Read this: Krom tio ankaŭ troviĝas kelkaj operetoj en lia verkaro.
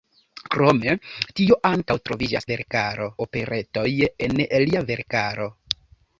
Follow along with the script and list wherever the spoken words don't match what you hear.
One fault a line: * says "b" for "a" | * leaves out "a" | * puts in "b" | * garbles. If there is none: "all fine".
* says "verkaro" for "kelkaj"